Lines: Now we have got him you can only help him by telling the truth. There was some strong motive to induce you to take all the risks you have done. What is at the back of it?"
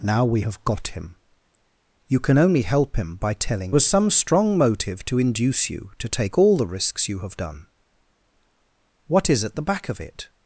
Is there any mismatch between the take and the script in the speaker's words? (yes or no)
yes